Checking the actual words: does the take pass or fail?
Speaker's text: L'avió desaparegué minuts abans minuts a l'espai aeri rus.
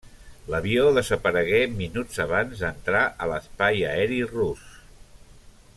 fail